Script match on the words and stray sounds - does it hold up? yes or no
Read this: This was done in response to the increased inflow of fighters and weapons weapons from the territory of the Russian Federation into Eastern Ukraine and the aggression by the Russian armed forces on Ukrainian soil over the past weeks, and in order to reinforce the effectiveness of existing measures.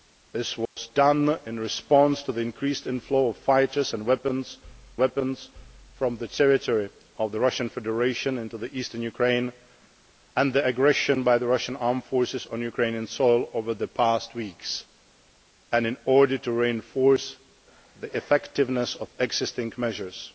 no